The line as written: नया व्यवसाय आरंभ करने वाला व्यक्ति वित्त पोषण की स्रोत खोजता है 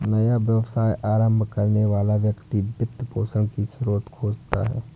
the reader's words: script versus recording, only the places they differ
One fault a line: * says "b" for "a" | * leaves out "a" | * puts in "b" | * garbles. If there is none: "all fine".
all fine